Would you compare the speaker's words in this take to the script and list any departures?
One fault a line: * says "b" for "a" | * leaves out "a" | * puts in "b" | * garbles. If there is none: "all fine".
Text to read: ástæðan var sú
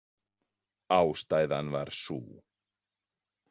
all fine